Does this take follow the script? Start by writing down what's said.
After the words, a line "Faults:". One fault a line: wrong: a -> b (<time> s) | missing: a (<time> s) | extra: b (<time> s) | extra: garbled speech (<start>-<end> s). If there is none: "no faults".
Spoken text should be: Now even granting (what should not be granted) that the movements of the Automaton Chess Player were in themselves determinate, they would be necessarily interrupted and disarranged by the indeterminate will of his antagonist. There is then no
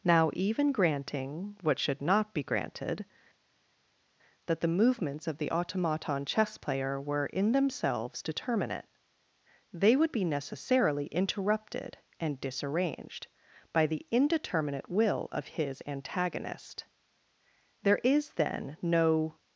Now even granting (what should not be granted) that the movements of the Automaton Chess Player were in themselves determinate, they would be necessarily interrupted and disarranged by the indeterminate will of his antagonist. There is then no
Faults:
no faults